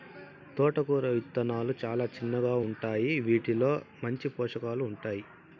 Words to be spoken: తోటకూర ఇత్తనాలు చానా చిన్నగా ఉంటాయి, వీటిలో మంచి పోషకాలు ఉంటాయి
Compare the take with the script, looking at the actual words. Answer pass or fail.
pass